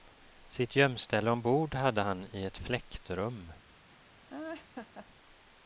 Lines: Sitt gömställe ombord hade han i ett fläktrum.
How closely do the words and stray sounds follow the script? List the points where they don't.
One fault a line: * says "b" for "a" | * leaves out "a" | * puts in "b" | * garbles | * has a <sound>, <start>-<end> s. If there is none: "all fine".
* has a laugh, 4.3-5.1 s